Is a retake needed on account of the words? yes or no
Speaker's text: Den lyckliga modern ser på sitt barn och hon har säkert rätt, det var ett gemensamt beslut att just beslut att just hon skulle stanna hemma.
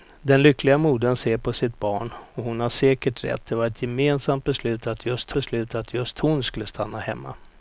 no